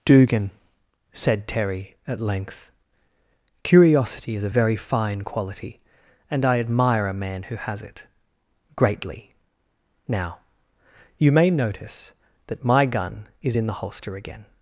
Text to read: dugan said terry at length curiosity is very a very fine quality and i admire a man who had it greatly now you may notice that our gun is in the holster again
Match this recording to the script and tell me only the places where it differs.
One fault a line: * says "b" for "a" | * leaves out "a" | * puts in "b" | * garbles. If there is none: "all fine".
* leaves out "very"
* says "has" for "had"
* says "my" for "our"